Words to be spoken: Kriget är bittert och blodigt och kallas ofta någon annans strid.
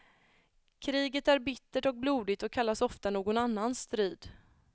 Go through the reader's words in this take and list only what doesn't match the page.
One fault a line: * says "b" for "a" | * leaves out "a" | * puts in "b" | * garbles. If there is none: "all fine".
all fine